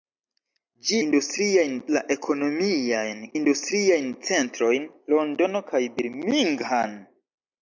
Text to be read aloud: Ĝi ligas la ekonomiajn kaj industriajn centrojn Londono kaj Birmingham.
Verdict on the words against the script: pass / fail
fail